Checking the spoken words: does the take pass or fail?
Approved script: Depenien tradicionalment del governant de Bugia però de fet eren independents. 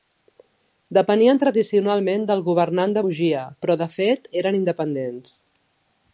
pass